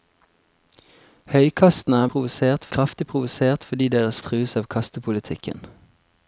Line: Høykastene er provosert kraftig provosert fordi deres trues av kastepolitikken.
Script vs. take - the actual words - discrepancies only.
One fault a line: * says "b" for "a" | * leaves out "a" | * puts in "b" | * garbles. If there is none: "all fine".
all fine